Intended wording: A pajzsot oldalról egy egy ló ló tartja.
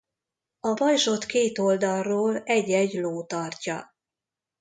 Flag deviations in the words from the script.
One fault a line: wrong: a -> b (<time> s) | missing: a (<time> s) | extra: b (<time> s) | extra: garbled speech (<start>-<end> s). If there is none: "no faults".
extra: két (1.3 s)
missing: ló (3.2 s)